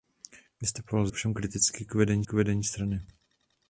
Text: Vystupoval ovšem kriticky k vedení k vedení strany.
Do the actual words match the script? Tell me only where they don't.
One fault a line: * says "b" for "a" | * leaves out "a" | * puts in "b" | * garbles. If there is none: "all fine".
all fine